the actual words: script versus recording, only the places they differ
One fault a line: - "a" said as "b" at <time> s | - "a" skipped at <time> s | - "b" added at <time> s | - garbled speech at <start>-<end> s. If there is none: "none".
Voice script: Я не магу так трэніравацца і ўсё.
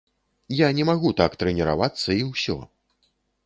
none